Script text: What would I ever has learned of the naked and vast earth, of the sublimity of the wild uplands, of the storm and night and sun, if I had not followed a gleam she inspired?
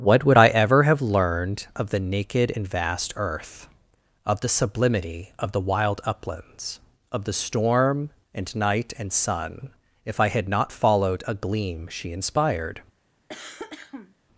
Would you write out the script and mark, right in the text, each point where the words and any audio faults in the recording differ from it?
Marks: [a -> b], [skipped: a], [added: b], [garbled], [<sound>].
What would I ever [has -> have] learned of the naked and vast earth, of the sublimity of the wild uplands, of the storm and night and sun, if I had not followed a gleam she inspired? [cough]